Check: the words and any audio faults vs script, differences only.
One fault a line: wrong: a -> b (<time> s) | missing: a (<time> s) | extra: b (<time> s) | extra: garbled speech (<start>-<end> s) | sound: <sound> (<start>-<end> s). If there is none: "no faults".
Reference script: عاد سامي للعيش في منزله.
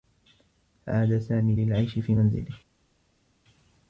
no faults